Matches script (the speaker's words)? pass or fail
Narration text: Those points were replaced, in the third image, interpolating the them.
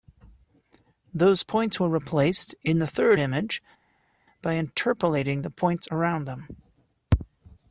fail